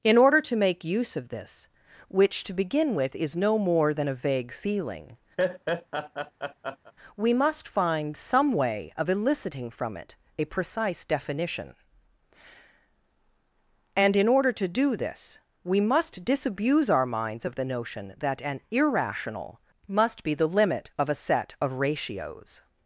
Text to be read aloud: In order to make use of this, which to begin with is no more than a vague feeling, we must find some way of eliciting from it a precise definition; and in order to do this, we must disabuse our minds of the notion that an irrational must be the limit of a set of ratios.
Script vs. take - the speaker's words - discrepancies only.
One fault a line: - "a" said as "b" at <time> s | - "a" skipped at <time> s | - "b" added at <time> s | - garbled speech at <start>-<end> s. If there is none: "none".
none